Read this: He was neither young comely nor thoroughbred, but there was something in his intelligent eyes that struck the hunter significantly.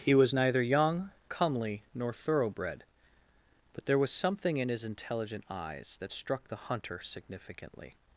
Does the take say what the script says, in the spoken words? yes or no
yes